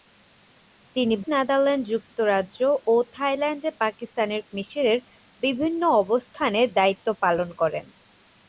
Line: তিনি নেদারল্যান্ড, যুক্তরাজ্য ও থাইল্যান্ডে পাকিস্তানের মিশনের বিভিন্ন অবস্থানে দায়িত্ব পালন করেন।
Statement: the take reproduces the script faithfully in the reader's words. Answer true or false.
true